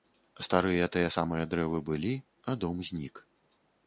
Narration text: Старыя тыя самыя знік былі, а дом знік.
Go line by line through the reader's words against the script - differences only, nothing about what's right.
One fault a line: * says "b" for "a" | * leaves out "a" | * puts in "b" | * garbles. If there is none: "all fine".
* says "дрэвы" for "знік"